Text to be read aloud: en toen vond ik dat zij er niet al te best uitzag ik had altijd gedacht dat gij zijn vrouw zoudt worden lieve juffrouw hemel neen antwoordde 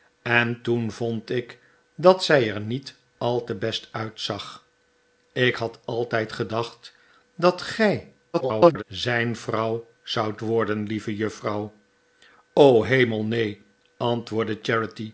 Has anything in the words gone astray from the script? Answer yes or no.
yes